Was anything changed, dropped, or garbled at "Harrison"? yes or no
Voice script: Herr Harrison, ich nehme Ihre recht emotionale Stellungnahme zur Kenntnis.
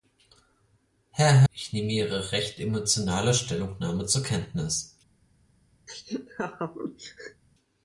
yes